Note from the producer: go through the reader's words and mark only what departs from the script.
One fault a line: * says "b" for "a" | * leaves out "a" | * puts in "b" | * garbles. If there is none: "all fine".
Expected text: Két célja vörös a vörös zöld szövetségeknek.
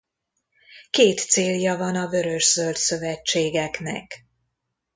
* says "van" for "vörös"